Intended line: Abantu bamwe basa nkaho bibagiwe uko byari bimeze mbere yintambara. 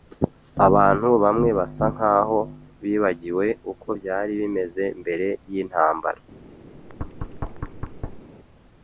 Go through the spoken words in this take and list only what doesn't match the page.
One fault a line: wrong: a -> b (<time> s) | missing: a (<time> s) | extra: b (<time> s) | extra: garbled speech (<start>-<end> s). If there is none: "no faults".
no faults